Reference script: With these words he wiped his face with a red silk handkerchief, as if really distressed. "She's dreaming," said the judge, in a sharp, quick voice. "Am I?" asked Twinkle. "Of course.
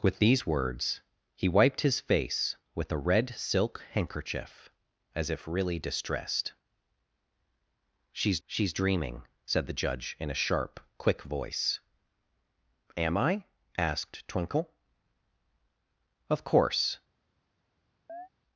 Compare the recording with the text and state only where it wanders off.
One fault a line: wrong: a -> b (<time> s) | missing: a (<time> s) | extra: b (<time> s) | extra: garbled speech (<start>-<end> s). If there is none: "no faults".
extra: she's (8.5 s)